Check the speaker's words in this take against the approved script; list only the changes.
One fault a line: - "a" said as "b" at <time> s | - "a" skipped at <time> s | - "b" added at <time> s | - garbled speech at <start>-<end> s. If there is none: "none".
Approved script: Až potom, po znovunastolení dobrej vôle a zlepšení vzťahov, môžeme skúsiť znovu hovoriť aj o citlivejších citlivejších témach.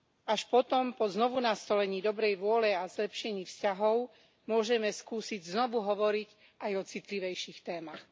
- "citlivejších" skipped at 7.6 s